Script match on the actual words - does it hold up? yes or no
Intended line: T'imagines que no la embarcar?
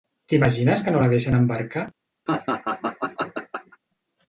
no